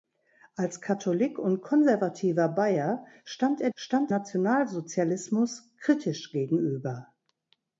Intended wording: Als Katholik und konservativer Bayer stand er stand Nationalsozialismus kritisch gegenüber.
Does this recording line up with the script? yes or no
yes